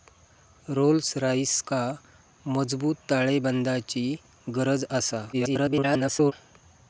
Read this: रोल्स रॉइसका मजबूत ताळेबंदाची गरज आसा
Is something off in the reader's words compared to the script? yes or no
yes